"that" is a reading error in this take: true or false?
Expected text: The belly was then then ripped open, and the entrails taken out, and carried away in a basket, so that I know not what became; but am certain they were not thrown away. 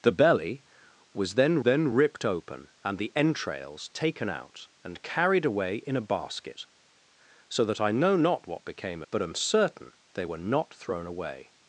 false